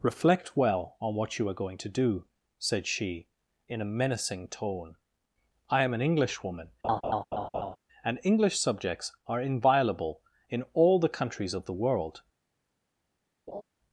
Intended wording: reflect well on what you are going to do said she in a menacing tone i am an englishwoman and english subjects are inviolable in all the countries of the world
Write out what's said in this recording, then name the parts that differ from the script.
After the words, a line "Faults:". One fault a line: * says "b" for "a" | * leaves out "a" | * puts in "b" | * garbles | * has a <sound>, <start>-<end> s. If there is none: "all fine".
reflect well on what you are going to do said she in a menacing tone i am an englishwoman and english subjects are inviolable in all the countries of the world
Faults:
* has a laugh, 6.8-7.8 s
* has a laugh, 13.5-13.6 s